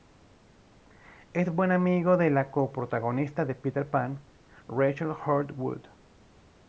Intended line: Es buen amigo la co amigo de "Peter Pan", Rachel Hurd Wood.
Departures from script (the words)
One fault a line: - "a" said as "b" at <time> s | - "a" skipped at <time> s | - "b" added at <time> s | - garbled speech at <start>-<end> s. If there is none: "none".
- "de" added at 2.2 s
- "amigo" said as "protagonista" at 2.7 s